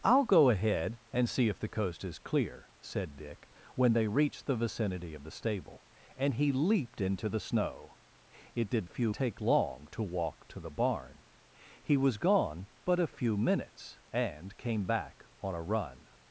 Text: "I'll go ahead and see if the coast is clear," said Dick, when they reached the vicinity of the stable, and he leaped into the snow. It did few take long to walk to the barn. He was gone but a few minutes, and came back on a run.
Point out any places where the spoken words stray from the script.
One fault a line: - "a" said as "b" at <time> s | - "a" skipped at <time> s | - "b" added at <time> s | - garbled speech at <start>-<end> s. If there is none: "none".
none